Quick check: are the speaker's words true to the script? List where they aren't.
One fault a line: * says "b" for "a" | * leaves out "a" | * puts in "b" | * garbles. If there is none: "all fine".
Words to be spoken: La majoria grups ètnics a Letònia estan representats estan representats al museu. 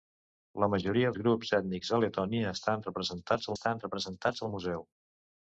all fine